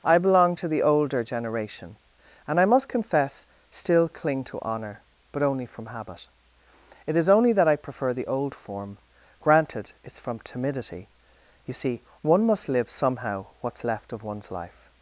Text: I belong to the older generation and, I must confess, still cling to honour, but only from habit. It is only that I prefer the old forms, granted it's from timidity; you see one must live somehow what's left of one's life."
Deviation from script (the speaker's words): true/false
true